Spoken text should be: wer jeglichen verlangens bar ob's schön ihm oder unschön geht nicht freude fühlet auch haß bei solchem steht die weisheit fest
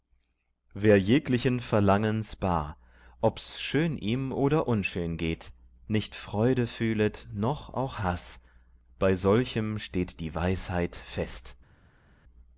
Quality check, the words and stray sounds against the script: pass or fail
fail